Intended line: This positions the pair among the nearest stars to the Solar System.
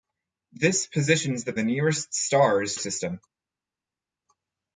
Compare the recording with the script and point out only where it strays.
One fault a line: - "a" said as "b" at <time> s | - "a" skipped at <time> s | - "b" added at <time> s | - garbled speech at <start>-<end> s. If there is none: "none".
- "pair among" skipped at 1.5 s
- "to the Solar" skipped at 2.8 s